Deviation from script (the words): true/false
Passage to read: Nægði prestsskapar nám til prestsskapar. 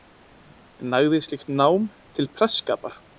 true